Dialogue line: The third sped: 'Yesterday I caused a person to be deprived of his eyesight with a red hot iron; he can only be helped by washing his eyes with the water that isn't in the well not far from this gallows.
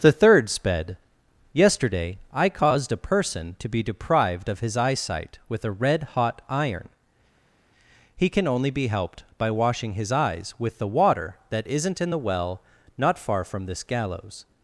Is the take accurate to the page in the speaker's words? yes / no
yes